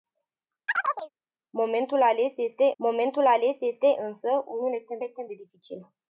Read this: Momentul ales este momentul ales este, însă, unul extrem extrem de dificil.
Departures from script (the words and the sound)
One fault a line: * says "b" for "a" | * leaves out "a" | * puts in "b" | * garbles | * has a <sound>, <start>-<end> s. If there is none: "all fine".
* has a chirp, 0.7-1.1 s